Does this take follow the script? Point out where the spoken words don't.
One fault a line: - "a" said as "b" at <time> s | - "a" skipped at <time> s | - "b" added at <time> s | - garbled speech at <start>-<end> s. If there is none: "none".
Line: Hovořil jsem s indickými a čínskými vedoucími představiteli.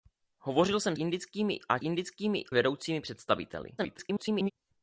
- "s" skipped at 0.9 s
- "čínskými" said as "indickými" at 1.8 s
- garbled speech at 3.8-4.5 s